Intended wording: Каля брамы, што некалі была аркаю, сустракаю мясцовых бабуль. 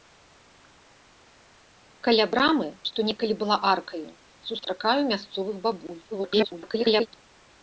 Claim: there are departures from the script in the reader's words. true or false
true